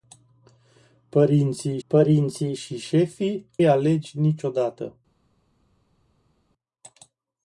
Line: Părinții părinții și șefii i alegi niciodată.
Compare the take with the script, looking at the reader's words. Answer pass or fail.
pass